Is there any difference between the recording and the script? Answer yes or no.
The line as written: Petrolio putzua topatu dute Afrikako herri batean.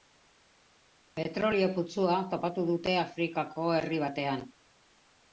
no